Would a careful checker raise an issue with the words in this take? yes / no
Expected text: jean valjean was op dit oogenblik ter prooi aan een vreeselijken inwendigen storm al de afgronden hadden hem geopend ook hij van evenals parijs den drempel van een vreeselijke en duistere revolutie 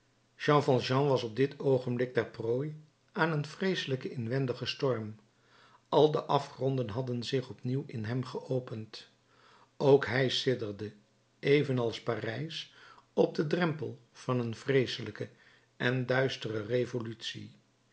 yes